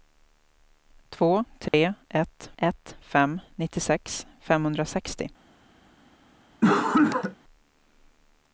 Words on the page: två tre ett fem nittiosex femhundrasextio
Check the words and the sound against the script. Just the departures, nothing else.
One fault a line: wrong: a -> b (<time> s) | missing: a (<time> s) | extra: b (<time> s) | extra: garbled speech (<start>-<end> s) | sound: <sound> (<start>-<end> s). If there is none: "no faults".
sound: dropout (1.7-1.7 s)
extra: ett (2.6 s)
sound: cough (6.6-7.4 s)